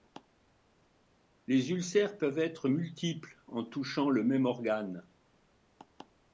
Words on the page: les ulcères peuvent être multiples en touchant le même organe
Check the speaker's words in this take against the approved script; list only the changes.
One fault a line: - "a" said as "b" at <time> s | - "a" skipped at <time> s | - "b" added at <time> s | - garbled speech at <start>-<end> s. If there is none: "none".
none